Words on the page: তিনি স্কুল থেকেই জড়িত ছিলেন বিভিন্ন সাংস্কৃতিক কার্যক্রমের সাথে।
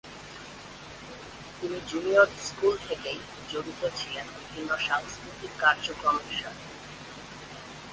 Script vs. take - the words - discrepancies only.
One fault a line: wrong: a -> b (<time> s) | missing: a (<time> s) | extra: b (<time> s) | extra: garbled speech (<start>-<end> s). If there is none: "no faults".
extra: জুনিয়র (1.9 s)